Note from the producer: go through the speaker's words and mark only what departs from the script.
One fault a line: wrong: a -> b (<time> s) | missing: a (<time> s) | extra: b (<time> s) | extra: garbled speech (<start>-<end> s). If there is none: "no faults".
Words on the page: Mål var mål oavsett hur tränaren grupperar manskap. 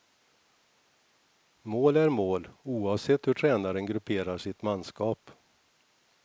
wrong: var -> är (2.0 s)
extra: sitt (4.4 s)